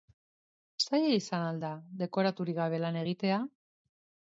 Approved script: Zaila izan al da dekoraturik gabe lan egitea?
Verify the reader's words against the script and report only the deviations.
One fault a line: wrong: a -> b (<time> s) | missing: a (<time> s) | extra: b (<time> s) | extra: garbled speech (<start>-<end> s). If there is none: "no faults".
no faults